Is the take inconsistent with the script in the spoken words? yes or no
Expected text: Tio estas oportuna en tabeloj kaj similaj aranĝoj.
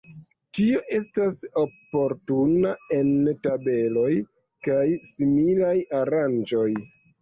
no